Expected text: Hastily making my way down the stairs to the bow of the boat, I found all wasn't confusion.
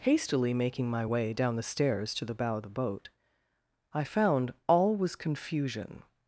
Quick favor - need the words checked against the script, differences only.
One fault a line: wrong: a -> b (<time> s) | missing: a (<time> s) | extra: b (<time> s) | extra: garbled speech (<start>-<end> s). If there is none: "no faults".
wrong: wasn't -> was (4.9 s)